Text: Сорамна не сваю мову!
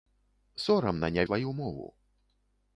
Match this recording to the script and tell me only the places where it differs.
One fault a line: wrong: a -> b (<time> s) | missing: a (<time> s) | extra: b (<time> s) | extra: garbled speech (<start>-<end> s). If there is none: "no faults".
no faults